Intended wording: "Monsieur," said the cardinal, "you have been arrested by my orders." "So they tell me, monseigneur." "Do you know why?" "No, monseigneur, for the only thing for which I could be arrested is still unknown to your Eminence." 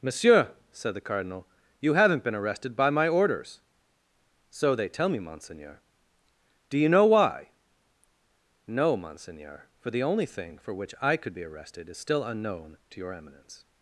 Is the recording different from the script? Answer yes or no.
yes